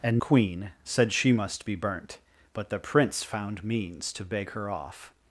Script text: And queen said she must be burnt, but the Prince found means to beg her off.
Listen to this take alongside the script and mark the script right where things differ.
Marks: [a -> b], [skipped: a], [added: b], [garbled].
And queen said she must be burnt, but the Prince found means to beg her off.